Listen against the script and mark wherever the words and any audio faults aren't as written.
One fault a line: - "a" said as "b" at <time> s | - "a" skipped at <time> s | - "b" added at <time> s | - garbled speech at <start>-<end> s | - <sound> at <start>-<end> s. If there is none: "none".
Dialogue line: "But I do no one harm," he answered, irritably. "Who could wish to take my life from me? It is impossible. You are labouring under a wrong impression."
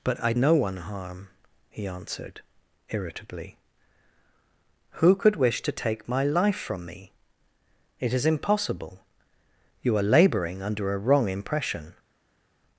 - "do" skipped at 0.3 s